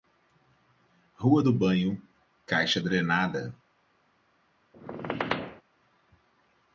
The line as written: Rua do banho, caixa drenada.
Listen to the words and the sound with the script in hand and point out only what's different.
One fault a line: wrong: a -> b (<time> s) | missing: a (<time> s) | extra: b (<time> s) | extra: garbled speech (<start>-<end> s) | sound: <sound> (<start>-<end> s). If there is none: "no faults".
sound: squeak (4.7-5.6 s)